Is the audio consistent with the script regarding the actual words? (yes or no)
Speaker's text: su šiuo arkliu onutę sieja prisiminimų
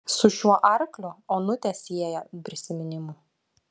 yes